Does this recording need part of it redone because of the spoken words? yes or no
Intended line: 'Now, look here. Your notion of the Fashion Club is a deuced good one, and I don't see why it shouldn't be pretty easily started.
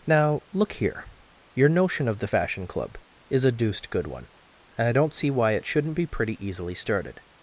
no